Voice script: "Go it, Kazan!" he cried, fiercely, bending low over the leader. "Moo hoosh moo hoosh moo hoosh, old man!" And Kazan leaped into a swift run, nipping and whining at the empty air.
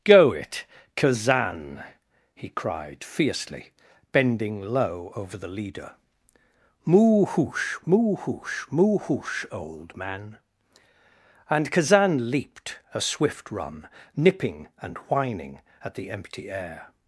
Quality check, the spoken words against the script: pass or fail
fail